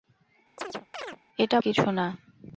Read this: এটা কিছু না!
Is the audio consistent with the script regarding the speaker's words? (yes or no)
yes